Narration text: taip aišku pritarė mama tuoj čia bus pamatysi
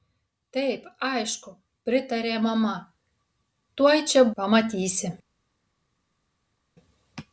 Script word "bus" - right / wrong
wrong